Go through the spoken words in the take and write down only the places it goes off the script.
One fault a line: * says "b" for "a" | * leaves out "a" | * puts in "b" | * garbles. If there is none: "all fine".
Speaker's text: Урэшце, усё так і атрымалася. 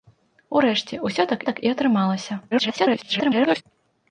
* puts in "так"
* garbles